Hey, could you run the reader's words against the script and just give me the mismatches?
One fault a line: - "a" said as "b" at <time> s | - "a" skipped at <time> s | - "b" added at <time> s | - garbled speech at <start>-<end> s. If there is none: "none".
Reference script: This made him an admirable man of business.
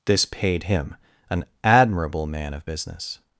- "made" said as "paid" at 0.2 s